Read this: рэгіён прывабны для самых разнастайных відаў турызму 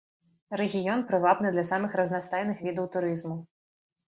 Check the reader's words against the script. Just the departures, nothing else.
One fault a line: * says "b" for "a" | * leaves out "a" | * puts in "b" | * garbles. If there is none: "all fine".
all fine